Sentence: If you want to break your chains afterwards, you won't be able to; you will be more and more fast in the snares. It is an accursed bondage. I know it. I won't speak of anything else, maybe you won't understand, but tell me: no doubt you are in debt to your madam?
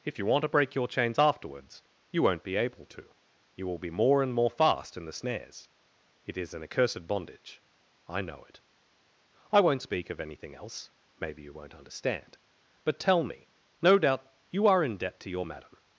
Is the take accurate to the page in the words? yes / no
yes